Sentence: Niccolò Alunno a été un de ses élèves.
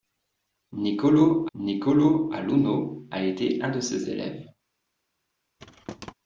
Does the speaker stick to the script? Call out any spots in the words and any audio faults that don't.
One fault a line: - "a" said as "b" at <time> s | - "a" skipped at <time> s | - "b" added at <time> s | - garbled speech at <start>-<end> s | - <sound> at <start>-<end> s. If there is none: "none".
- "niccolò" added at 1.6 s
- thud at 5.6-6.1 s